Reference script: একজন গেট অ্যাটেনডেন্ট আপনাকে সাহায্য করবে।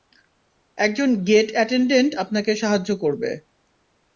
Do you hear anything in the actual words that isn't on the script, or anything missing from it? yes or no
no